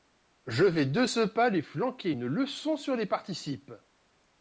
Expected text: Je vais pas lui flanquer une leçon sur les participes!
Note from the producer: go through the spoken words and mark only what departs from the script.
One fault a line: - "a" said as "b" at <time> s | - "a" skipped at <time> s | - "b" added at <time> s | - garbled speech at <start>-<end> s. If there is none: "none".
- "de ce" added at 0.9 s